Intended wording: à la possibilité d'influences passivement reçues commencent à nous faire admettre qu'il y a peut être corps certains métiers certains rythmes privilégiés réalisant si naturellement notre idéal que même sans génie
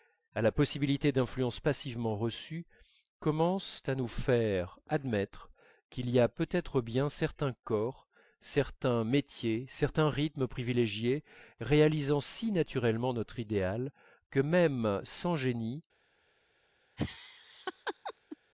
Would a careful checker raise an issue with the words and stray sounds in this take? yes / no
yes